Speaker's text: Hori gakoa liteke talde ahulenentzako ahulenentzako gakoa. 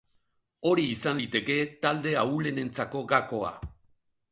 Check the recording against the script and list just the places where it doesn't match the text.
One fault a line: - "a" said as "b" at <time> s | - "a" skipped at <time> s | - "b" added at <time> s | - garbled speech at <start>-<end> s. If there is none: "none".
- "gakoa" said as "izan" at 0.9 s
- "ahulenentzako" skipped at 3.0 s